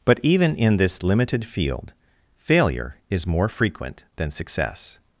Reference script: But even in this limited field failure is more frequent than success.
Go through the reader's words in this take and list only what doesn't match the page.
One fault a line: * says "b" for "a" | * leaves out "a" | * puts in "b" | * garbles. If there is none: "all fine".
all fine